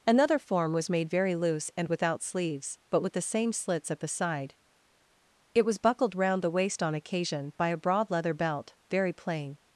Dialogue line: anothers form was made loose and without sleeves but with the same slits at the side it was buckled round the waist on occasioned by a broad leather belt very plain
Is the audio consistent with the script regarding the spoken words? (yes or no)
no